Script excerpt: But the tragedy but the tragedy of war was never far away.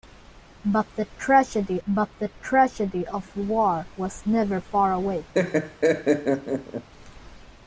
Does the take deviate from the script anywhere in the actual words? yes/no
no